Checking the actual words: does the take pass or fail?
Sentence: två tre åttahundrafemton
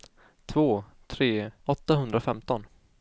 pass